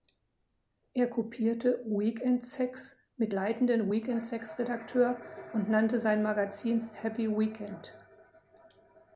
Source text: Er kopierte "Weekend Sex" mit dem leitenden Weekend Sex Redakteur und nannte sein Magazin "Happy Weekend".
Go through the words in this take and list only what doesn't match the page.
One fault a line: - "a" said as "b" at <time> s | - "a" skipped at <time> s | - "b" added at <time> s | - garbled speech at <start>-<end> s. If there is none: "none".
- "dem" skipped at 3.3 s